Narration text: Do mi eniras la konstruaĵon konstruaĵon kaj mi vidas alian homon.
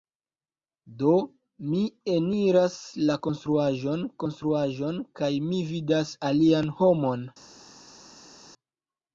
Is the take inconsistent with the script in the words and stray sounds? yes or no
no